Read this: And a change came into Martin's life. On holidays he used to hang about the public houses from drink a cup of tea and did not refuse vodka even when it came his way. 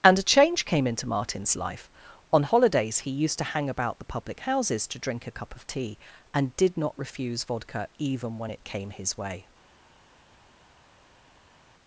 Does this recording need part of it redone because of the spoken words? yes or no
yes